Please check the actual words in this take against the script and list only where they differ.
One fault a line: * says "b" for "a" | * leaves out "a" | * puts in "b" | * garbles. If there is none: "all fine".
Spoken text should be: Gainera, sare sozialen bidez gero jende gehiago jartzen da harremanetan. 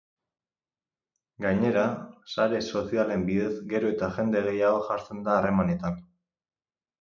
* puts in "eta"